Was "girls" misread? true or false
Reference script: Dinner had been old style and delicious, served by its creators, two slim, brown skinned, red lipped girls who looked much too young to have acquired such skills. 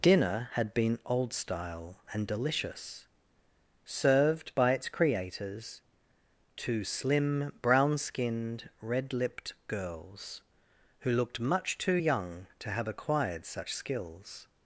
false